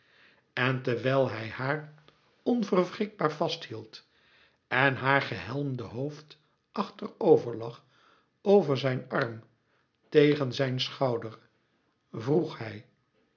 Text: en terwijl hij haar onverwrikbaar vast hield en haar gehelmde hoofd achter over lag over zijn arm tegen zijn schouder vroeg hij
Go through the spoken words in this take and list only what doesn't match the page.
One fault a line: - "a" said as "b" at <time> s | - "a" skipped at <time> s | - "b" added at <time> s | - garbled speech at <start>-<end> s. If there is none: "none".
none